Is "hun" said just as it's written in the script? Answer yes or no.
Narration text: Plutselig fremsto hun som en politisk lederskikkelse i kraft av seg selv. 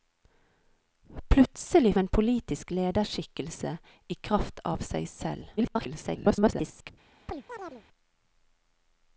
no